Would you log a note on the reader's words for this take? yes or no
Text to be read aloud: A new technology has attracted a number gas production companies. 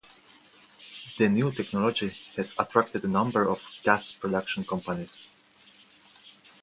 yes